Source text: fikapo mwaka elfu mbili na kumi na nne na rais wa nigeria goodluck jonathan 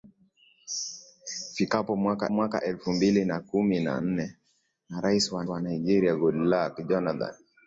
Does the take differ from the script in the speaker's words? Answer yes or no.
yes